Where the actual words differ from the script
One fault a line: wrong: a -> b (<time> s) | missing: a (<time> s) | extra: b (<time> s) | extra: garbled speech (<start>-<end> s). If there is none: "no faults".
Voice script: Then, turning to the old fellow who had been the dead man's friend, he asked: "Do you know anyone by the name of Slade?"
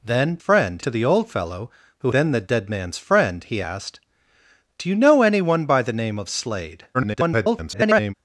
wrong: turning -> friend (0.4 s)
missing: had (2.1 s)
extra: garbled speech (6.9-8.1 s)